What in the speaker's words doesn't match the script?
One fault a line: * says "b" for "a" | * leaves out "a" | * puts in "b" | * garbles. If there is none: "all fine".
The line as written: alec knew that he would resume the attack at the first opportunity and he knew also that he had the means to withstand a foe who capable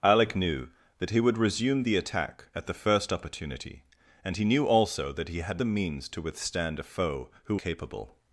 all fine